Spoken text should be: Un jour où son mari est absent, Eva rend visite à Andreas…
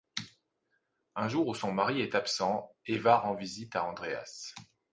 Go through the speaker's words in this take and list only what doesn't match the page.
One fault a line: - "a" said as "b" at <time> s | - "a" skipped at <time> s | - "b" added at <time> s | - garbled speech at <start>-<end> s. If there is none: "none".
none